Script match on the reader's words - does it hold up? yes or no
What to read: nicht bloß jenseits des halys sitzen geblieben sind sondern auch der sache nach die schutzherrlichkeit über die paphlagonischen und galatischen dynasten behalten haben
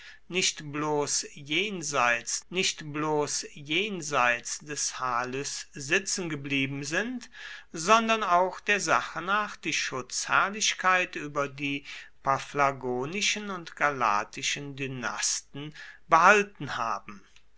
no